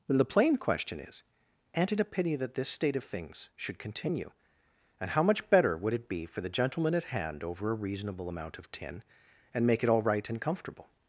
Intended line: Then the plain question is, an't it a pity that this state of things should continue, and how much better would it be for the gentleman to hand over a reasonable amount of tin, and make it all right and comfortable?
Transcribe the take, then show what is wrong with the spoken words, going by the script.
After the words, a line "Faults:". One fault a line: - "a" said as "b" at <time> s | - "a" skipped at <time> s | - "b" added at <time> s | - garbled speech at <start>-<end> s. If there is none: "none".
Then the plain question is, an't it a pity that this state of things should continue, and how much better would it be for the gentleman at hand over a reasonable amount of tin, and make it all right and comfortable?
Faults:
- "to" said as "at" at 6.9 s